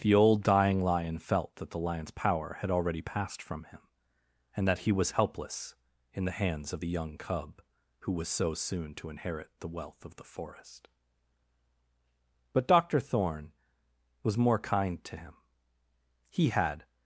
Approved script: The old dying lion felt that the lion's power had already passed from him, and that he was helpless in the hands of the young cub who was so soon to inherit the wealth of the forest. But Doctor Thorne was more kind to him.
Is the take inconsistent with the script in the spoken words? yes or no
yes